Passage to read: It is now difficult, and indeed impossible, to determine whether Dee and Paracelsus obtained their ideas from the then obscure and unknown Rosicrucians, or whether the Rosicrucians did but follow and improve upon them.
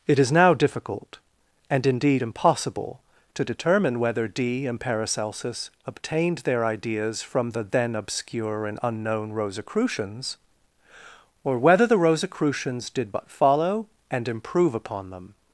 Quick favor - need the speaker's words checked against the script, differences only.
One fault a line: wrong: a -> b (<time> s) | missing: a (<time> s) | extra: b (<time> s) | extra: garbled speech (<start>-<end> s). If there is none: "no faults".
no faults